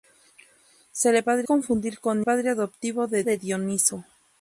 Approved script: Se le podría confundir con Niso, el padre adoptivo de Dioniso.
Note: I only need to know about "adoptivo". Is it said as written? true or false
true